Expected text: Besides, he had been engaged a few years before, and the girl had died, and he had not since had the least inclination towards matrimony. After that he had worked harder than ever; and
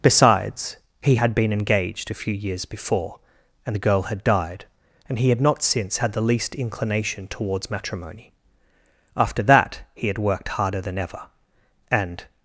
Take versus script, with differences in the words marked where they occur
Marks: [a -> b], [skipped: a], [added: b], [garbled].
Besides, he had been engaged a few years before, and the girl had died, and he had not since had the least inclination towards matrimony. After that he had worked harder than ever; and